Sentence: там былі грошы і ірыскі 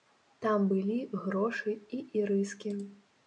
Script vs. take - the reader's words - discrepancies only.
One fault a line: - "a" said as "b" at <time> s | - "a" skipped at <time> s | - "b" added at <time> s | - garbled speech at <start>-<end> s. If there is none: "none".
none